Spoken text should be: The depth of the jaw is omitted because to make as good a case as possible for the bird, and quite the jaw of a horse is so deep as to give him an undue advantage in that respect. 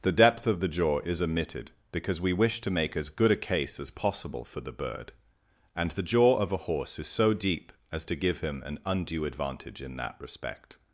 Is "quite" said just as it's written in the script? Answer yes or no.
no